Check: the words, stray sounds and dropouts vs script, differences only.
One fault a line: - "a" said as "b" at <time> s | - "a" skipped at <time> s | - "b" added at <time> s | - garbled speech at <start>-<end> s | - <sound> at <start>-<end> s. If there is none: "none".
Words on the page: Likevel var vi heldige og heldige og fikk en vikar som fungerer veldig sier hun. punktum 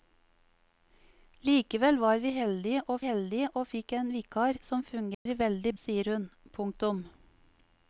- dropout at 5.1-5.3 s